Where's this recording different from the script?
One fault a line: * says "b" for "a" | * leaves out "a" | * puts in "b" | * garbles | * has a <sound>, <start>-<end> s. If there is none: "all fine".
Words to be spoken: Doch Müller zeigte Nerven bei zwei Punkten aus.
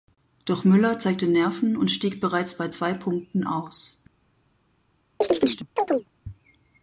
* puts in "und stieg bereits"
* has a chirp, 5.2-6.1 s